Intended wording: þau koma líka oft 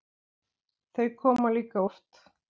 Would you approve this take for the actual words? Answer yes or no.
yes